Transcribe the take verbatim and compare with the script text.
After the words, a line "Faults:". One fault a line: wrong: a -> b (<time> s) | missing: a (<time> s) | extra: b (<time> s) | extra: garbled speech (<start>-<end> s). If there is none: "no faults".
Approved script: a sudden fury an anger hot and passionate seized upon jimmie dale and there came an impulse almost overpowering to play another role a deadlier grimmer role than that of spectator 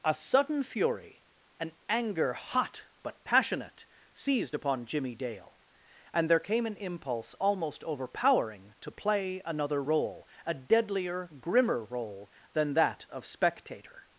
a sudden fury an anger hot but passionate seized upon jimmie dale and there came an impulse almost overpowering to play another role a deadlier grimmer role than that of spectator
Faults:
wrong: and -> but (3.0 s)